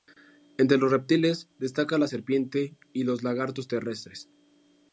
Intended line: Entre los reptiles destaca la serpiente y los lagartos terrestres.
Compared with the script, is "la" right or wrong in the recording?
right